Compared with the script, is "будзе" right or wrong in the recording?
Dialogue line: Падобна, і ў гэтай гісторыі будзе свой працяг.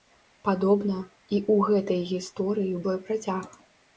wrong